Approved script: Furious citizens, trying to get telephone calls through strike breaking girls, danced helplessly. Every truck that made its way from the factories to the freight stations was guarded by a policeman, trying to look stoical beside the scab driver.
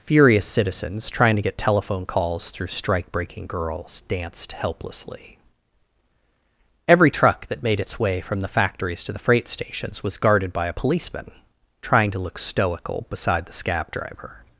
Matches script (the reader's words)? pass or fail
pass